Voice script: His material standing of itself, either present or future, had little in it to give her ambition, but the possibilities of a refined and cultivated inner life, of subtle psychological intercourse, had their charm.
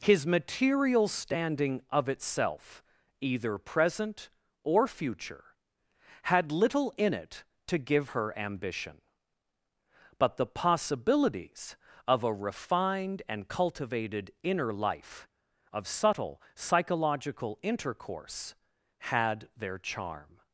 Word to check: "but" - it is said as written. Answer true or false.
true